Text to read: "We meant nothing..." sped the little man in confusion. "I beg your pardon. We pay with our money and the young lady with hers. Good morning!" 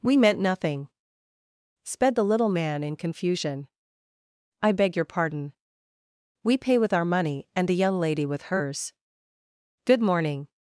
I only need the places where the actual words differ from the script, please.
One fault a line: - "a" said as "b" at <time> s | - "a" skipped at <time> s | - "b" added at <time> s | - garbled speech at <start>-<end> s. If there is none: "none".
none